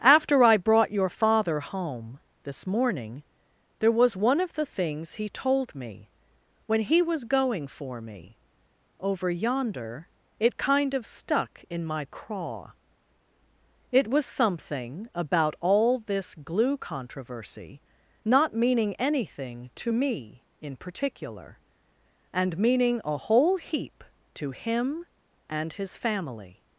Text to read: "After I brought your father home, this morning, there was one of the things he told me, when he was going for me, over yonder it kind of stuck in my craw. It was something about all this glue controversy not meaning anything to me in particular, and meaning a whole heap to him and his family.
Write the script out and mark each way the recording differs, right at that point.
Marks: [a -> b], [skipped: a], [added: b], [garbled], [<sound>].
"After I brought your father home, this morning, there was one of the things he told me, when he was going for me, over yonder it kind of stuck in my craw. It was something about all this glue controversy not meaning anything to me in particular, and meaning a whole heap to him and his family.